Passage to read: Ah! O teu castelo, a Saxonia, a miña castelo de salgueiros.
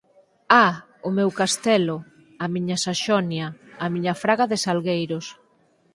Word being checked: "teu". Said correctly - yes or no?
no